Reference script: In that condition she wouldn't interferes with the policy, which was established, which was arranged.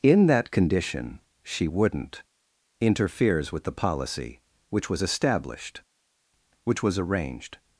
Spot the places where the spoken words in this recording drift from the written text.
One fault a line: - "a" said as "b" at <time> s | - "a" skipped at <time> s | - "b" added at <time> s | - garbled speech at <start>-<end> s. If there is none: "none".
none